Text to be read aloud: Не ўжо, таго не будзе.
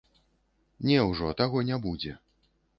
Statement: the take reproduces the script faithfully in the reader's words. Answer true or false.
true